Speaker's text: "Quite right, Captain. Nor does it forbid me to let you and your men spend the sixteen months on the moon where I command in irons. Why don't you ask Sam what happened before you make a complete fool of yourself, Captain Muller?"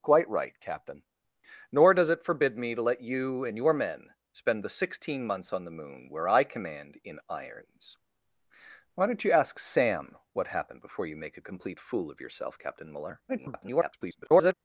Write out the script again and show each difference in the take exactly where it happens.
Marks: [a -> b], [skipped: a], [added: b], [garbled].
"Quite right, Captain. Nor does it forbid me to let you and your men spend the sixteen months on the moon where I command in irons. Why don't you ask Sam what happened before you make a complete fool of yourself, Captain Muller?" [garbled]